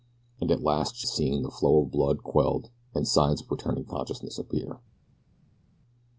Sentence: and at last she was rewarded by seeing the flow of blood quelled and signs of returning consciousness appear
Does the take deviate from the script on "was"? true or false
true